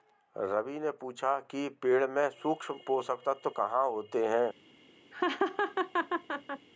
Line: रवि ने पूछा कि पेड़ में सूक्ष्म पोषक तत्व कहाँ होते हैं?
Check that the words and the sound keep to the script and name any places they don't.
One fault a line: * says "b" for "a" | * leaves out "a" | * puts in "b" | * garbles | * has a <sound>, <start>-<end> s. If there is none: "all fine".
* has a laugh, 5.1-6.7 s